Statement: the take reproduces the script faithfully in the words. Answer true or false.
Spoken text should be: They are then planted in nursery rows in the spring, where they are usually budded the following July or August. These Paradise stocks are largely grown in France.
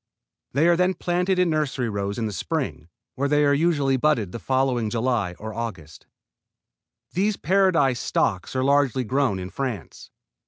true